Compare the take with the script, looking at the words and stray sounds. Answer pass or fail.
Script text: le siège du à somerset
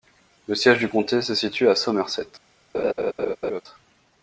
fail